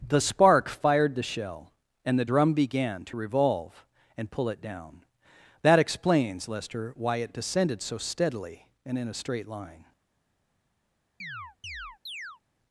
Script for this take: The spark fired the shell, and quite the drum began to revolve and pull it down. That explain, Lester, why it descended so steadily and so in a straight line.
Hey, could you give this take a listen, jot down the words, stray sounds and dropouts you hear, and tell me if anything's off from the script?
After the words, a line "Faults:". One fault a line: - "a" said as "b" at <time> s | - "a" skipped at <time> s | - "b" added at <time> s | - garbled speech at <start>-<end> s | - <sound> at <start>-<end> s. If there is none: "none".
The spark fired the shell, and the drum began to revolve and pull it down. That explains, Lester, why it descended so steadily and in a straight line.
Faults:
- "quite" skipped at 2.2 s
- "explain" said as "explains" at 5.8 s
- "so" skipped at 9.0 s
- chirp at 11.2-12.4 s